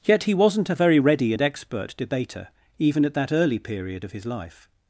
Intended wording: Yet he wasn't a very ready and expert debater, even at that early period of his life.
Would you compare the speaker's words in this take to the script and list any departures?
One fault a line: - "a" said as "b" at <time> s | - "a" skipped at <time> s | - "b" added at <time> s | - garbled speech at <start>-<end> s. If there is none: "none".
none